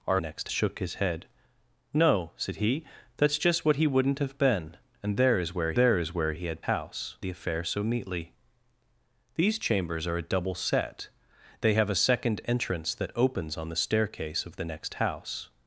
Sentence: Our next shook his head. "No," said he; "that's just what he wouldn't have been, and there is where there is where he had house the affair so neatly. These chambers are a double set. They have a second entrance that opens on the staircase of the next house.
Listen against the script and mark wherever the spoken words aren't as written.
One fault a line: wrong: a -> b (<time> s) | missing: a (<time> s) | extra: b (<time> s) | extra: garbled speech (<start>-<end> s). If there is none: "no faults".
no faults